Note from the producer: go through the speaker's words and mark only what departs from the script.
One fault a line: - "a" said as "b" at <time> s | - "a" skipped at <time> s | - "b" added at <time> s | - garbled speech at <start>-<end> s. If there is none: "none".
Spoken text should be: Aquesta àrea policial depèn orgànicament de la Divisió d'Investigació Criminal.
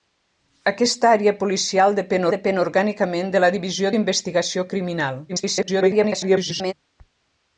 - "depèn" added at 2.3 s
- garbled speech at 5.3-6.7 s